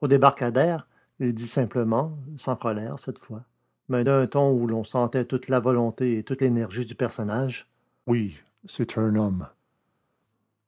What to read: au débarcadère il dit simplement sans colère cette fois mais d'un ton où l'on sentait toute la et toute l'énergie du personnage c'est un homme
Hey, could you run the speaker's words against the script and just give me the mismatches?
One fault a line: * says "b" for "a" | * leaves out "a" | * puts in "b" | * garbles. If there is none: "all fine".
* puts in "volonté"
* puts in "oui"